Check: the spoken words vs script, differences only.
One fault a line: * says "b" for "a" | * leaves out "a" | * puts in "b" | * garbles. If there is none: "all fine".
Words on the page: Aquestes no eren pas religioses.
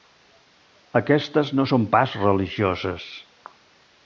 * says "són" for "eren"